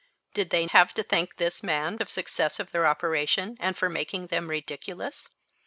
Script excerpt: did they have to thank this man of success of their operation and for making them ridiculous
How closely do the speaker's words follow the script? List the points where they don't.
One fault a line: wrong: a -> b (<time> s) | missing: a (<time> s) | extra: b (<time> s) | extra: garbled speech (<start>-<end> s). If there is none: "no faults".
no faults